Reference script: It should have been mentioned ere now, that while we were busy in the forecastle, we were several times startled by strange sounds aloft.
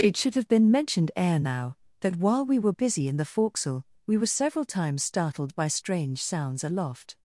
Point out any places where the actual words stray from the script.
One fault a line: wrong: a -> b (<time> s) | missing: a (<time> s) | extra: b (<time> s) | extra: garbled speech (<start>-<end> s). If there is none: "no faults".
no faults